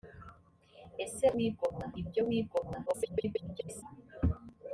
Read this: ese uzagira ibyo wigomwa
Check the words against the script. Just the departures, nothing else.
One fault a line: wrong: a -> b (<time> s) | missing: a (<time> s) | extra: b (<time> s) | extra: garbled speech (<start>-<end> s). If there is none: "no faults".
wrong: uzagira -> wigomwa (1.4 s)
extra: garbled speech (2.9-3.8 s)